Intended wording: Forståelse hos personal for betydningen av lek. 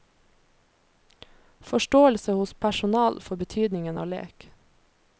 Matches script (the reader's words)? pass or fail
pass